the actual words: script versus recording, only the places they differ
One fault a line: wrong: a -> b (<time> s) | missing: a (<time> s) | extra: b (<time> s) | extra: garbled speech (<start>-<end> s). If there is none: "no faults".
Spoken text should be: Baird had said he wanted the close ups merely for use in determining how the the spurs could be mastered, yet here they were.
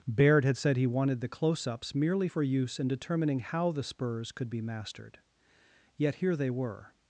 missing: the (3.8 s)